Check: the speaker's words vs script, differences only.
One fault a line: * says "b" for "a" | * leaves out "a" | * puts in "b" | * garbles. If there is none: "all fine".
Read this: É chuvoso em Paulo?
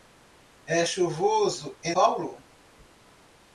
all fine